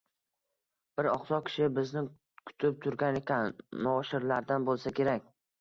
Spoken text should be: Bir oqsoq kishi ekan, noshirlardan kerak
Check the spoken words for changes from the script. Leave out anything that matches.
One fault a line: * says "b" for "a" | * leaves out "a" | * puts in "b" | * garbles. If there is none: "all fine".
* puts in "bizni kutib turgan"
* puts in "bo'lsa"